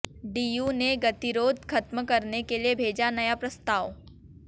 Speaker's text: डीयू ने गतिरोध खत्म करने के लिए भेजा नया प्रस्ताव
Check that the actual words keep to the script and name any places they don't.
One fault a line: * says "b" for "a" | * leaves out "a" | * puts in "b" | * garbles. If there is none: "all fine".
all fine